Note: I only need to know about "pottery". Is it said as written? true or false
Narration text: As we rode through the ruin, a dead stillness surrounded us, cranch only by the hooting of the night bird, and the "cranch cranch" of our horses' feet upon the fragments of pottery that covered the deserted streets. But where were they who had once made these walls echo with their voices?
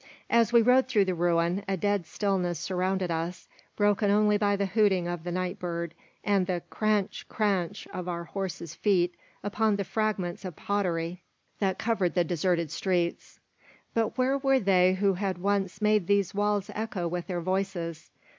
true